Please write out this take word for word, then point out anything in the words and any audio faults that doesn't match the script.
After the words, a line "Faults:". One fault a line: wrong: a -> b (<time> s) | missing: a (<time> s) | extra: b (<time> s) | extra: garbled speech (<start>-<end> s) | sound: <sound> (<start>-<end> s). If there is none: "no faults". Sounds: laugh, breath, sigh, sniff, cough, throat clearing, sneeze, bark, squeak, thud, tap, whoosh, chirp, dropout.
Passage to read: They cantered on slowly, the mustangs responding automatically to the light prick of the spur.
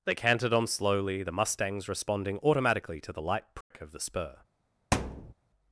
They cantered on slowly, the mustangs responding automatically to the light prick of the spur.
Faults:
sound: dropout (3.6-3.7 s)
sound: thud (4.9-5.3 s)